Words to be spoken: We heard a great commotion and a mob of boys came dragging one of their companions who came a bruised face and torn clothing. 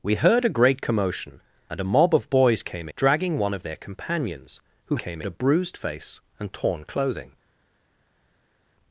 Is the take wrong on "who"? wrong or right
right